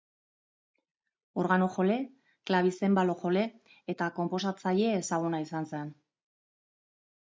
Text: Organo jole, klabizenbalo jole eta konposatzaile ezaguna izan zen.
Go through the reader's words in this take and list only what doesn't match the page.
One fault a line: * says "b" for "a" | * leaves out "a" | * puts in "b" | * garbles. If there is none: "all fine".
all fine